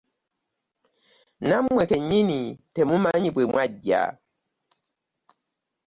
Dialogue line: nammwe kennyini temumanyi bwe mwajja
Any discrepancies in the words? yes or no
no